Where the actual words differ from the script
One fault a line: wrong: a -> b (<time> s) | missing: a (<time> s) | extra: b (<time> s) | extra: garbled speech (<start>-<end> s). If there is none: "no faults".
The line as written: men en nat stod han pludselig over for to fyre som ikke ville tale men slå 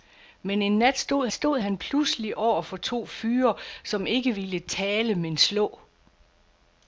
extra: stod (1.3 s)